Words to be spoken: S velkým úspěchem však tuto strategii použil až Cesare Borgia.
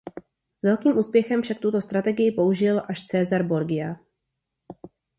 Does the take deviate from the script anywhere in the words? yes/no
no